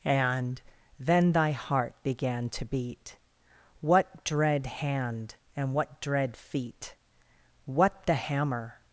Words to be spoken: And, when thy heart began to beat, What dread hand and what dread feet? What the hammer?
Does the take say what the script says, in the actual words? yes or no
no